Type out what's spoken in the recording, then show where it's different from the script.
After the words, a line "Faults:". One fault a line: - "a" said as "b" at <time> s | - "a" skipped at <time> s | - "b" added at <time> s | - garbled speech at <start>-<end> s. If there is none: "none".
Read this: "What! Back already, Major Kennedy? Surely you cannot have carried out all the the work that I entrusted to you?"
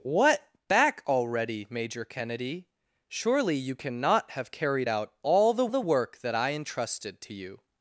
"What! Back already, Major Kennedy? Surely you cannot have carried out all the the work that I entrusted to you?"
Faults:
none